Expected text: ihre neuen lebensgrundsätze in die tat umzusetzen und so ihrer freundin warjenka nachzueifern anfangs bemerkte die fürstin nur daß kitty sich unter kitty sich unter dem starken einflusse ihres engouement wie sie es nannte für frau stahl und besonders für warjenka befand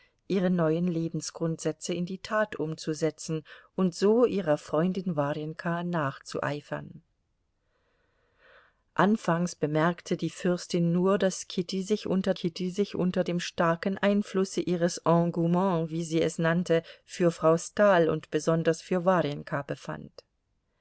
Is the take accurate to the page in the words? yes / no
yes